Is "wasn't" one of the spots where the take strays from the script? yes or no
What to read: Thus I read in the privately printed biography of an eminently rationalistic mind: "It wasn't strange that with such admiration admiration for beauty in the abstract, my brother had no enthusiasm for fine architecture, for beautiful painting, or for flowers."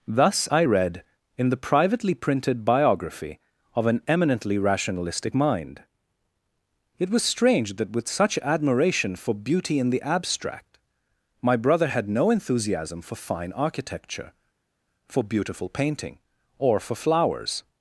yes